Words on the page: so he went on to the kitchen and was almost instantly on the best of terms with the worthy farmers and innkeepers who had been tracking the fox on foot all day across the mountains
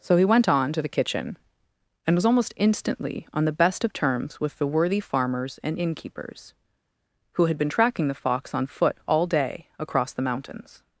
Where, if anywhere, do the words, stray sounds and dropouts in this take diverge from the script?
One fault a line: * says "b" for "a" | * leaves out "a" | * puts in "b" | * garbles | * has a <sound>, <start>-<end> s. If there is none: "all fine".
all fine